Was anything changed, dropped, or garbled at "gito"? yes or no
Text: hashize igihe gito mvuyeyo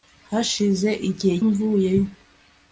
yes